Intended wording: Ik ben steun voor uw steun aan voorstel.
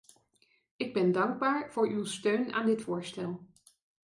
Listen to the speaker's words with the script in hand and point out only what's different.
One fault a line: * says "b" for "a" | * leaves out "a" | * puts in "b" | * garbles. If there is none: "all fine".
* says "dankbaar" for "steun"
* puts in "dit"